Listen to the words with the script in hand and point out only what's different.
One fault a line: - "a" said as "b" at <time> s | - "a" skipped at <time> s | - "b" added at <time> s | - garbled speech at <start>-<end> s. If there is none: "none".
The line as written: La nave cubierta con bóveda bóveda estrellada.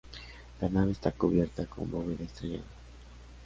- "está" added at 0.9 s
- "bóveda" skipped at 2.2 s